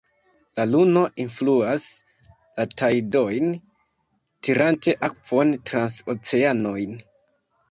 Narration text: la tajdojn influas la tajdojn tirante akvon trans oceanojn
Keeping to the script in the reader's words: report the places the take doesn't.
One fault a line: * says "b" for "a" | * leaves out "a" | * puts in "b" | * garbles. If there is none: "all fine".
* says "luno" for "tajdojn"